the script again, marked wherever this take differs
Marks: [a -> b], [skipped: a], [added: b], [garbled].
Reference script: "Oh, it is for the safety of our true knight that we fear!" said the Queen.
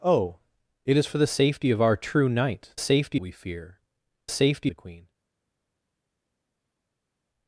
"Oh, it is for the safety of our true knight [that -> safety] we fear!" [said -> safety] the Queen.